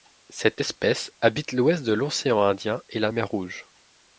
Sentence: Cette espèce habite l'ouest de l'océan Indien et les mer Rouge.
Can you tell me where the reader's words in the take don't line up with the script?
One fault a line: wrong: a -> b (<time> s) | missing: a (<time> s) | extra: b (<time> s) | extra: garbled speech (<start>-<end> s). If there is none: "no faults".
wrong: les -> la (3.0 s)